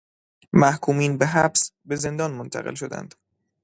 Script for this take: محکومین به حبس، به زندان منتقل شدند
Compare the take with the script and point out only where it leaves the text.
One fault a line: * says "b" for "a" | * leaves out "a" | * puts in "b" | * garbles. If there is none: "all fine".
all fine